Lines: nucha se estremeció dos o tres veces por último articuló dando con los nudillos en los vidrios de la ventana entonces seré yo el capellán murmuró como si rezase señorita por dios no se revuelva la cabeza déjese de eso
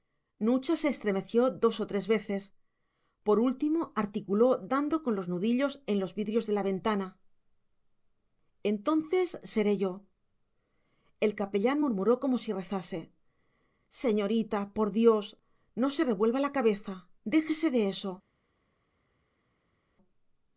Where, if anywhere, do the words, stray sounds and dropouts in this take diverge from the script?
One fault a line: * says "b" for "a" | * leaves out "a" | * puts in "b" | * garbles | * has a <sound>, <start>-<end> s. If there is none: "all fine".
all fine